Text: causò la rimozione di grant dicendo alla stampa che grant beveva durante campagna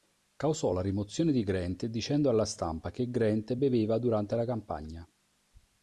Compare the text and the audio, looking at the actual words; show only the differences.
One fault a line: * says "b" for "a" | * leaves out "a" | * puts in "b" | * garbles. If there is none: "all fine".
* puts in "la"